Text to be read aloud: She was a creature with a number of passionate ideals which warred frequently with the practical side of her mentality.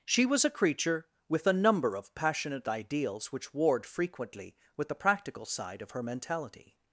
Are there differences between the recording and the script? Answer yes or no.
no